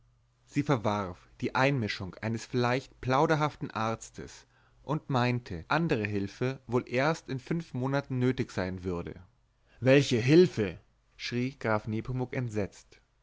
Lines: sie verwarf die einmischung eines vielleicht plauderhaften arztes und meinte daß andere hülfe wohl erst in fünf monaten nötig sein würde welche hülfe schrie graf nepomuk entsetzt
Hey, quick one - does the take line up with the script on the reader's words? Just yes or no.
no